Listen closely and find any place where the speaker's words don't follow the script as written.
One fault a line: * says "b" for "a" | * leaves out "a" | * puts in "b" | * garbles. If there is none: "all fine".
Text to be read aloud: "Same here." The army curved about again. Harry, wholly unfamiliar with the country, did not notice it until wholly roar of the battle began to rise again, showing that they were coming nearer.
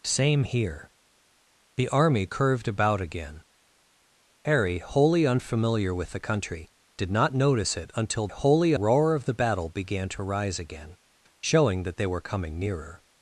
all fine